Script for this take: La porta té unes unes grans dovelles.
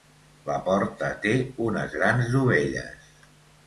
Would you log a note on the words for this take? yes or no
yes